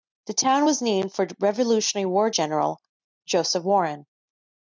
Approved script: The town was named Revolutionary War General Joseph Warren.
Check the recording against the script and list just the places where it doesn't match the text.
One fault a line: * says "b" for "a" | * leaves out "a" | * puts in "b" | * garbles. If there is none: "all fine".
* puts in "for"